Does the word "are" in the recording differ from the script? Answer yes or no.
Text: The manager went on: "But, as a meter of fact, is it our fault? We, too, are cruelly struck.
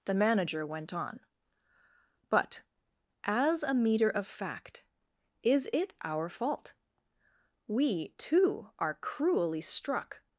no